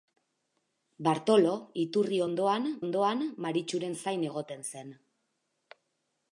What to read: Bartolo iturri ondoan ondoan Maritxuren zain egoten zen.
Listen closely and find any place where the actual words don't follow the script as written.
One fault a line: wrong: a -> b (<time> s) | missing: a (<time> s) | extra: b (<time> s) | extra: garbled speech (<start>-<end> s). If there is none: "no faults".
no faults